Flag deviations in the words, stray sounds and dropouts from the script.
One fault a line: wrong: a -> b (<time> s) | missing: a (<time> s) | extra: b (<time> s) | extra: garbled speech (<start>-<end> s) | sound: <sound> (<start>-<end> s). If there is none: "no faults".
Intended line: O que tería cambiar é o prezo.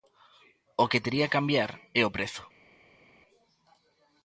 no faults